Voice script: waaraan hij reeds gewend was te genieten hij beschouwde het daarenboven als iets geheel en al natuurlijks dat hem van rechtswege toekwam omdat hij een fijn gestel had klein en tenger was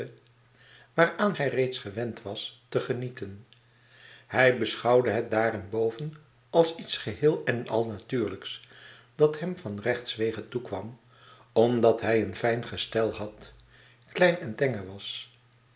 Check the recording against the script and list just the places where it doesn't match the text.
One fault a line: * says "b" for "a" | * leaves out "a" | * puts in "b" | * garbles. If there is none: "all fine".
all fine